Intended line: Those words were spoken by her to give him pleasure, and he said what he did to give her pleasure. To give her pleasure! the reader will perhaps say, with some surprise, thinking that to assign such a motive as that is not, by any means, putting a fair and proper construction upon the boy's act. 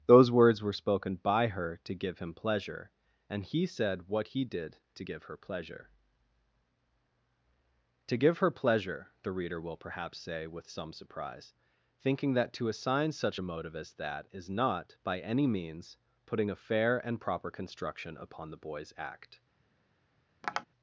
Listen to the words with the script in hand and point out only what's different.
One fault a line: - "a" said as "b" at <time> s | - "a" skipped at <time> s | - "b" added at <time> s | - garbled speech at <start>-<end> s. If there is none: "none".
none